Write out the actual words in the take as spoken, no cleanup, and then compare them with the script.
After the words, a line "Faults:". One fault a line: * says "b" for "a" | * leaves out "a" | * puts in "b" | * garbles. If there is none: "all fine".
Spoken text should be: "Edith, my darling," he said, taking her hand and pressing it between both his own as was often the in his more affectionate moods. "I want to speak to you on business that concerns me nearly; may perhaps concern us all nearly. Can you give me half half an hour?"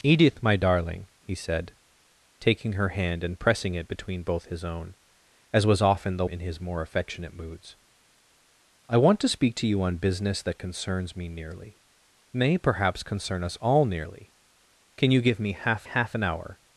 "Edith, my darling," he said, taking her hand and pressing it between both his own as was often the in his more affectionate moods. "I want to speak to you on business that concerns me nearly; may perhaps concern us all nearly. Can you give me half half an hour?"
Faults:
all fine